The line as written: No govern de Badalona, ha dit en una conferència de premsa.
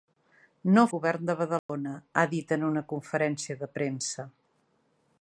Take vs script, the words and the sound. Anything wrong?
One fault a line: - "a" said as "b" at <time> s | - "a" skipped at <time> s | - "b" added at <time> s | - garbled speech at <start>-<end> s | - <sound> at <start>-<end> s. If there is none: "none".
- dropout at 1.6-1.7 s